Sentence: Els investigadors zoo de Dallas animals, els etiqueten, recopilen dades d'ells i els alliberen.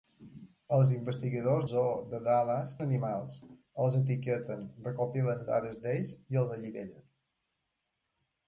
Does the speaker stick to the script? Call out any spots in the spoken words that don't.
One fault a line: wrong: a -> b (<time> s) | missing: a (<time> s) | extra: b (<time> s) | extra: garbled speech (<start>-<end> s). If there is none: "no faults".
no faults